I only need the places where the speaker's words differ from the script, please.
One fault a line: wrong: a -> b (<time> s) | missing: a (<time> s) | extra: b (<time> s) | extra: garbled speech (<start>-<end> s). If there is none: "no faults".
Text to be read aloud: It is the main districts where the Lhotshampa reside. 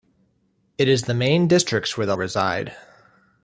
missing: Lhotshampa (2.2 s)